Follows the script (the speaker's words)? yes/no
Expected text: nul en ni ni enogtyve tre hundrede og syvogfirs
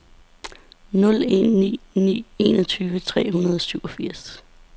yes